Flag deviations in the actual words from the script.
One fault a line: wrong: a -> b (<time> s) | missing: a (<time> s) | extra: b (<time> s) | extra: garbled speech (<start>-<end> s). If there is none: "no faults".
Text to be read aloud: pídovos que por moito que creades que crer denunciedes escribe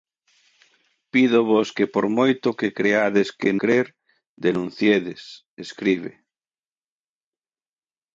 no faults